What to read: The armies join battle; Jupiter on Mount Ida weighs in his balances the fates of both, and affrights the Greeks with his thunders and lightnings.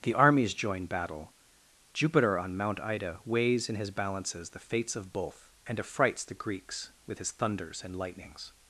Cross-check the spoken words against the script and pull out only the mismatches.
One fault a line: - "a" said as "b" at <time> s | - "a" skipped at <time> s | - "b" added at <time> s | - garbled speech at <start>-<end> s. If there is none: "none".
none